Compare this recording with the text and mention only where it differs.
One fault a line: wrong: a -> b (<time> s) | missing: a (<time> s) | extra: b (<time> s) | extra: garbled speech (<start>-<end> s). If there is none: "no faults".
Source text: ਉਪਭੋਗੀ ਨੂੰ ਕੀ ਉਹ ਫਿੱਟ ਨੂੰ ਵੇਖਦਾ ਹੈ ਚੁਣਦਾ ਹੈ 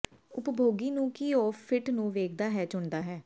no faults